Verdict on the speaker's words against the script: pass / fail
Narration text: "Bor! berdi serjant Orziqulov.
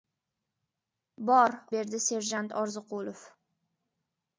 pass